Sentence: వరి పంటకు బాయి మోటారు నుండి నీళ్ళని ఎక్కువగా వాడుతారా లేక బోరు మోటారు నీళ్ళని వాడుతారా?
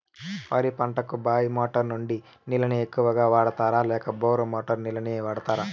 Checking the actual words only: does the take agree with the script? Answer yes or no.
yes